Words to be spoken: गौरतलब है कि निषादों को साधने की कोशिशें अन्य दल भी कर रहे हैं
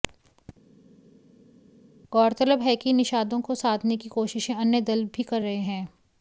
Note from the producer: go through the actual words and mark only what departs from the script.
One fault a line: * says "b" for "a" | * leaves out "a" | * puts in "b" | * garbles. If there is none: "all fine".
all fine